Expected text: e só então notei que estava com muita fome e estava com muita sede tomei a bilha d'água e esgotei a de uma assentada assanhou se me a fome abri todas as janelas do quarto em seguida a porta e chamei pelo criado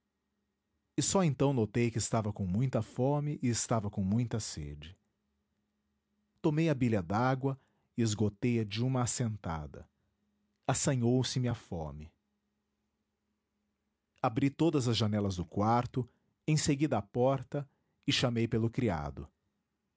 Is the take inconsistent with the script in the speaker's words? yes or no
no